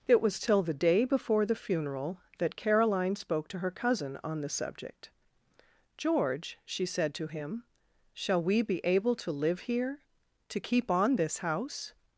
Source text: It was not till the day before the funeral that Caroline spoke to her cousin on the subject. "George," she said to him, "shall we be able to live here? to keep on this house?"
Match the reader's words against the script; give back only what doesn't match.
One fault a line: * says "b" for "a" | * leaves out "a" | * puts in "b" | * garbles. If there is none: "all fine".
* leaves out "not"